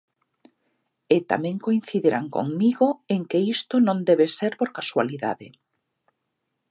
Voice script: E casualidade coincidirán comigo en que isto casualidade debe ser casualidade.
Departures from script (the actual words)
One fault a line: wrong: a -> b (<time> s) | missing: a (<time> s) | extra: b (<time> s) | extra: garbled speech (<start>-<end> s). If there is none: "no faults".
wrong: casualidade -> tamén (1.3 s)
wrong: casualidade -> non (3.9 s)
extra: por (4.6 s)